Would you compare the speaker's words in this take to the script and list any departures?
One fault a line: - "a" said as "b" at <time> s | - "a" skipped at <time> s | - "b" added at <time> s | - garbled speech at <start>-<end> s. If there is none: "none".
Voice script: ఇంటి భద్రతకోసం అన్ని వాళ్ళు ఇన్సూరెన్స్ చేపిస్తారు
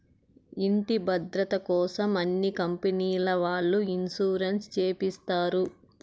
- "కంపెనీల" added at 2.6 s